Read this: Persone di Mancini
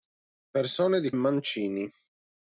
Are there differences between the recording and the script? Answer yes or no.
no